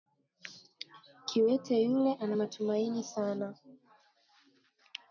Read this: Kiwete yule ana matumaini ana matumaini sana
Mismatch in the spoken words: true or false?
true